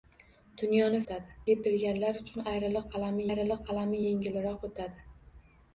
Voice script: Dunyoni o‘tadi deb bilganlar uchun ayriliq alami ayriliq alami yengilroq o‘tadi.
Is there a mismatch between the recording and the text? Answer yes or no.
no